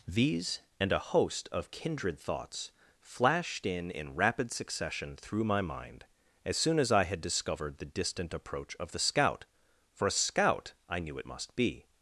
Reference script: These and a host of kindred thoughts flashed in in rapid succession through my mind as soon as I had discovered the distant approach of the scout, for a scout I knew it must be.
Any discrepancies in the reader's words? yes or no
no